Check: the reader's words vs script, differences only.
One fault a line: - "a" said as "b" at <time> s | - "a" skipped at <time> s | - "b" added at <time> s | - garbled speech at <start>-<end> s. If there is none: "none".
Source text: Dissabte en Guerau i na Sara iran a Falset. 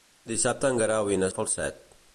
- "Sara iran" skipped at 1.3 s